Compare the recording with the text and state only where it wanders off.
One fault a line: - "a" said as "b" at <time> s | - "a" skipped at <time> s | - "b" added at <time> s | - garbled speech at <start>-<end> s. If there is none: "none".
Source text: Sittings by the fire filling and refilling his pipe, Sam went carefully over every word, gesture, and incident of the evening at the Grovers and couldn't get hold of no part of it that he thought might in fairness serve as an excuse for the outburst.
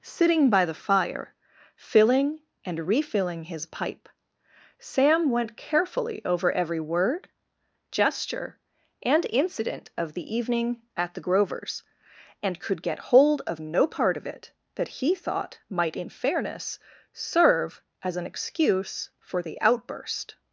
- "Sittings" said as "Sitting" at 0.0 s
- "couldn't" said as "could" at 12.6 s